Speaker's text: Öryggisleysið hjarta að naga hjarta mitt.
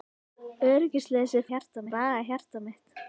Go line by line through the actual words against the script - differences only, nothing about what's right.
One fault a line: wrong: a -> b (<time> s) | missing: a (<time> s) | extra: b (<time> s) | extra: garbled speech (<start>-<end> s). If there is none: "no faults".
no faults